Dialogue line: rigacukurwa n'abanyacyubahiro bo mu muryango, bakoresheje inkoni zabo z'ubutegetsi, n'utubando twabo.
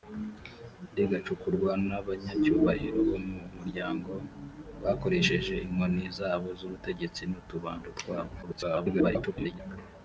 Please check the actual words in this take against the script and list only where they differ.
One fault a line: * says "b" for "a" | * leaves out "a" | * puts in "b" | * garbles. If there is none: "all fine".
* garbles